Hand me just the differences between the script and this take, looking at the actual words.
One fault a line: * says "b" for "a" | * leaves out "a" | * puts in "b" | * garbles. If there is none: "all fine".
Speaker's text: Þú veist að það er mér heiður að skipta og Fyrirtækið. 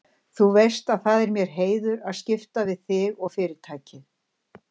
* puts in "við þig"